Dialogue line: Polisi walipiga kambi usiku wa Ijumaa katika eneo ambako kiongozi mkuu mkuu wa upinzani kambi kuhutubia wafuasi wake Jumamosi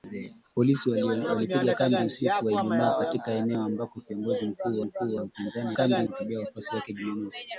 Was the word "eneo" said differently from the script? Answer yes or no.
no